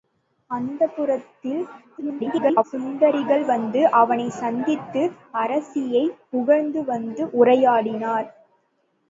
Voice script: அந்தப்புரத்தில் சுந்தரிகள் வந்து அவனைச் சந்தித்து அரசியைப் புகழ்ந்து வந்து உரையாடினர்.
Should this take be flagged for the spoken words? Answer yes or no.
yes